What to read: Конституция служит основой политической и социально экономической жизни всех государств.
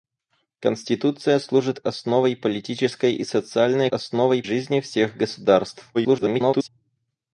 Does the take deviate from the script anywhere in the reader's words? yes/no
yes